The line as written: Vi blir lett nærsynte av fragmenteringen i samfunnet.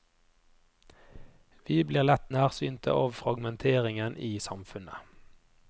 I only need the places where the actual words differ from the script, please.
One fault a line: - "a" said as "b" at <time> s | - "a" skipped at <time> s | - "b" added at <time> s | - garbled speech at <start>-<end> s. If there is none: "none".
none